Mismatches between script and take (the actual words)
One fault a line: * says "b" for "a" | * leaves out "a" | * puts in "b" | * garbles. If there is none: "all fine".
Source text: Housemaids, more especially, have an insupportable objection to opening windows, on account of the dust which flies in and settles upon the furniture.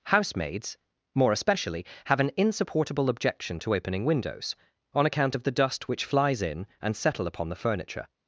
* says "settle" for "settles"